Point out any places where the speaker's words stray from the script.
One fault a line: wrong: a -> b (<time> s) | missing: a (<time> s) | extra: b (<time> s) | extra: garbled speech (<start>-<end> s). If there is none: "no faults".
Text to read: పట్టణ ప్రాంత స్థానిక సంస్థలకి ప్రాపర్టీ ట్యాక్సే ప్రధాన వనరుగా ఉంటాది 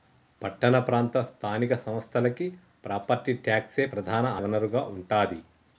no faults